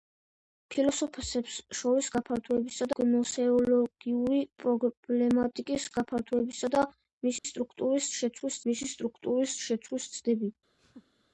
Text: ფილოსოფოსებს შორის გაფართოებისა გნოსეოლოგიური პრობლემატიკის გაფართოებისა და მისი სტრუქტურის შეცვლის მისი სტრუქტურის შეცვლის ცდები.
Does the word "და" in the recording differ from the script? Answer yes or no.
no